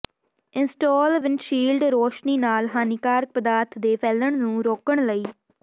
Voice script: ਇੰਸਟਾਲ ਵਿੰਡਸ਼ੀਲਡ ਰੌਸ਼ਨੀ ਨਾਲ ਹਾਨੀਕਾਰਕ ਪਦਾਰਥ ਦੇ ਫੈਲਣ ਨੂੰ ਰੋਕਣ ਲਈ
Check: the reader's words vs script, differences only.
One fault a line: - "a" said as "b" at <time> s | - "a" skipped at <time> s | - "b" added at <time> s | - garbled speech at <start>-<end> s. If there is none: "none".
none